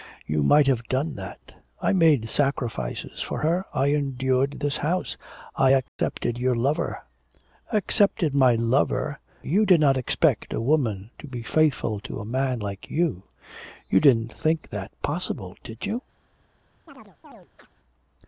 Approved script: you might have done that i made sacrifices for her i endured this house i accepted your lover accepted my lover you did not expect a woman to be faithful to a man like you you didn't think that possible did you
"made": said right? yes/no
yes